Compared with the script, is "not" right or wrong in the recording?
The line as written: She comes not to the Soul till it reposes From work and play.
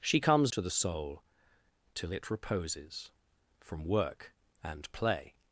wrong